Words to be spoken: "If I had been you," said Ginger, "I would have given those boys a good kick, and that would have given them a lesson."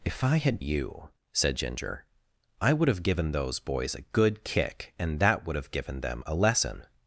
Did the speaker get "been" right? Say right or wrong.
wrong